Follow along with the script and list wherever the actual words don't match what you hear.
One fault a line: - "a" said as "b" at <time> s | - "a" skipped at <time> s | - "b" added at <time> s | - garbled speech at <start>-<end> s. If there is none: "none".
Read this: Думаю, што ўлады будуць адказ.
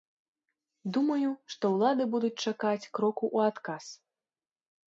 - "чакаць кроку ў" added at 2.5 s